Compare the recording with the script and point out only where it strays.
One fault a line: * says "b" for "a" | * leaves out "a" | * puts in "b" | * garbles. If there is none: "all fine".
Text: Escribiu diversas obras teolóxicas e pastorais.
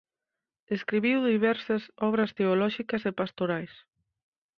all fine